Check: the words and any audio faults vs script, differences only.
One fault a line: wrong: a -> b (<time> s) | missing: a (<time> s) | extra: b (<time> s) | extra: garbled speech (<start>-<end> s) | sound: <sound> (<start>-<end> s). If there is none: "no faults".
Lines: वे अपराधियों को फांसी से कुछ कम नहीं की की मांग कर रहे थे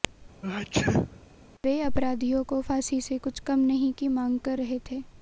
sound: sneeze (0.4-1.3 s)
missing: की (4.1 s)